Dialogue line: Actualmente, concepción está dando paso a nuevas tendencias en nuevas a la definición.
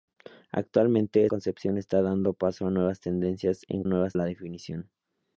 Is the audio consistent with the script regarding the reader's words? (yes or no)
yes